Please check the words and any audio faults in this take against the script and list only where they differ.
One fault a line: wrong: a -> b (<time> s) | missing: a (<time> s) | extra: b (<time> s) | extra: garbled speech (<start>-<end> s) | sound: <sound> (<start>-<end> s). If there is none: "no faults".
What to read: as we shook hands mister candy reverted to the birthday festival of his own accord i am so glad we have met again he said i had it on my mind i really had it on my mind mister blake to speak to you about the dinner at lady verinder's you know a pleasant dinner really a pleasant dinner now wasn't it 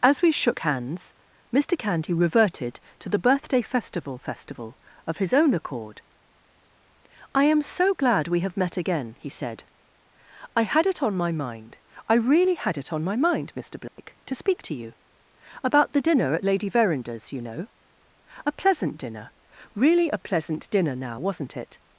extra: festival (4.2 s)
sound: dropout (13.9-14.0 s)